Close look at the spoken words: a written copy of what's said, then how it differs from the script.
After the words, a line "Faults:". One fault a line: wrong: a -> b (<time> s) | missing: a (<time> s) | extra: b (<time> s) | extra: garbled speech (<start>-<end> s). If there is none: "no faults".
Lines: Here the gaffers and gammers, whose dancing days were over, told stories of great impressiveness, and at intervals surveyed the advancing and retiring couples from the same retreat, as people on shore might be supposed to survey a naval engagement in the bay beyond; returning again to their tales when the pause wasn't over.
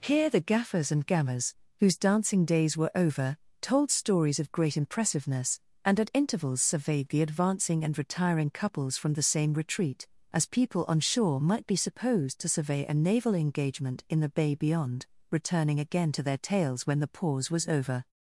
Here the gaffers and gammers, whose dancing days were over, told stories of great impressiveness, and at intervals surveyed the advancing and retiring couples from the same retreat, as people on shore might be supposed to survey a naval engagement in the bay beyond; returning again to their tales when the pause was over.
Faults:
wrong: wasn't -> was (17.5 s)